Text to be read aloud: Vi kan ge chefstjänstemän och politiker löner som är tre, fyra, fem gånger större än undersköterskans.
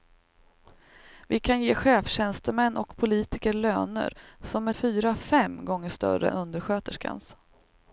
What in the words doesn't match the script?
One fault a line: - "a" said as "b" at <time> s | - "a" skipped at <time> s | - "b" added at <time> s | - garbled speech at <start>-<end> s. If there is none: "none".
- "tre" skipped at 4.7 s
- "än" skipped at 6.3 s